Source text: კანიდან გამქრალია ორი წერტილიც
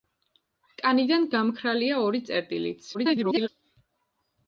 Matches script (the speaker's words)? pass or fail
fail